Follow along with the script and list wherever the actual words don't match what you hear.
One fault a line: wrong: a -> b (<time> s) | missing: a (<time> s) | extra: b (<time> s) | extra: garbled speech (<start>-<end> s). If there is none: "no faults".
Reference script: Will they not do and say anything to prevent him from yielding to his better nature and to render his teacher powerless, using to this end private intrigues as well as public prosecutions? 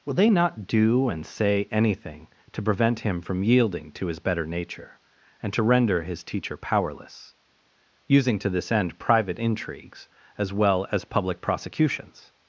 no faults